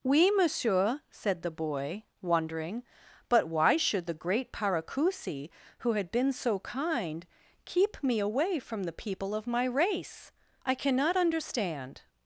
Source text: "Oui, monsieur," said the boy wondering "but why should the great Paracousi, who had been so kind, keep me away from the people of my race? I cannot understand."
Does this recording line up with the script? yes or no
yes